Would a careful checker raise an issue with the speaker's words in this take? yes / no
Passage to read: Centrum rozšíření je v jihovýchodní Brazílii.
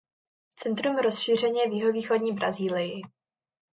no